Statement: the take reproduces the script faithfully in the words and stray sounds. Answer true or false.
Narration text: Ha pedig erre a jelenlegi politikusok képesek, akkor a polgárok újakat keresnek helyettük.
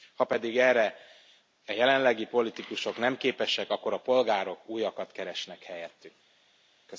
false